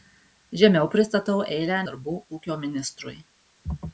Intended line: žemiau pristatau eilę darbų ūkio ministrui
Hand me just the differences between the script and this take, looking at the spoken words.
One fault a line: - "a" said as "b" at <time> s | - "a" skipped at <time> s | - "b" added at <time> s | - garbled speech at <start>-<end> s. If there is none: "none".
none